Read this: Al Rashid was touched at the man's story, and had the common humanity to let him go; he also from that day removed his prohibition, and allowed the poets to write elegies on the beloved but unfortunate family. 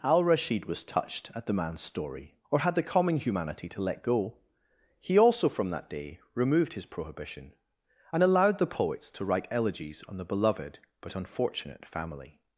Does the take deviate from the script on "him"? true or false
true